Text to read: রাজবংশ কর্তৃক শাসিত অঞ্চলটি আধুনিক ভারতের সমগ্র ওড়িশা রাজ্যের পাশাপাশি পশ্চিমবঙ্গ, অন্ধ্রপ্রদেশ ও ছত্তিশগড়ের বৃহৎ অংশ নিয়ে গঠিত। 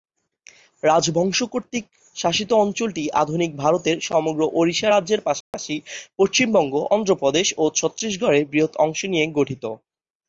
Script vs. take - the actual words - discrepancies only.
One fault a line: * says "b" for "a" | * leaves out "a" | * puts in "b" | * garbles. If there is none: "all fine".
all fine